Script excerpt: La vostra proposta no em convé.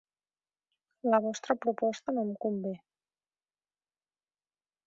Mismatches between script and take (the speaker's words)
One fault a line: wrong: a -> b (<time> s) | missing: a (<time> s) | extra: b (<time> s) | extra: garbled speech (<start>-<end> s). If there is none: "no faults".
no faults